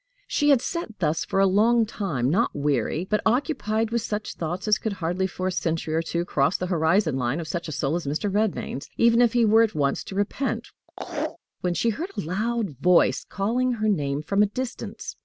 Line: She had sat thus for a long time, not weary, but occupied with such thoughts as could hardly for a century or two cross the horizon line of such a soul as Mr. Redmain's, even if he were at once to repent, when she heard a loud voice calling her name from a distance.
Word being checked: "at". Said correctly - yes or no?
yes